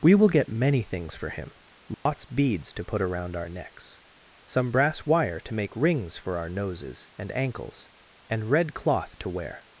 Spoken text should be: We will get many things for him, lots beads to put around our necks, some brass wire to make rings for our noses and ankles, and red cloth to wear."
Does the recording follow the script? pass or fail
pass